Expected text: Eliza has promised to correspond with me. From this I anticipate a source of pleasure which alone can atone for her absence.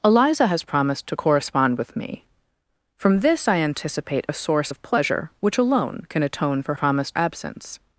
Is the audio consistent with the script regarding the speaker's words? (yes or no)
no